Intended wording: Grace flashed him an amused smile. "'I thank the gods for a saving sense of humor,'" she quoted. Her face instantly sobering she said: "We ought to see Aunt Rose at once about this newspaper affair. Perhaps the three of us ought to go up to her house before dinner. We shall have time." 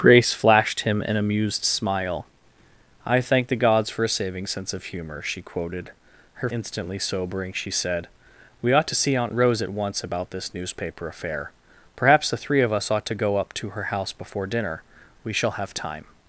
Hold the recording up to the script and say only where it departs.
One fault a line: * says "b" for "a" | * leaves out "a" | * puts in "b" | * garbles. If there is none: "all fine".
* leaves out "face"